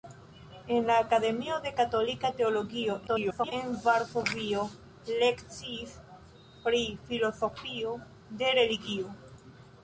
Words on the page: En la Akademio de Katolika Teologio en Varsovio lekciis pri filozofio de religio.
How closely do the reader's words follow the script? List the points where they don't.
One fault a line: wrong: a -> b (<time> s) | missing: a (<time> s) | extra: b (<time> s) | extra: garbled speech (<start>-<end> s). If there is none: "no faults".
extra: garbled speech (3.1-3.5 s)